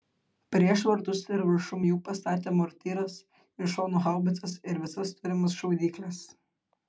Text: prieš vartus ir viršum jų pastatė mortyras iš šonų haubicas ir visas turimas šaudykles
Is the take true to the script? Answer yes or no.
yes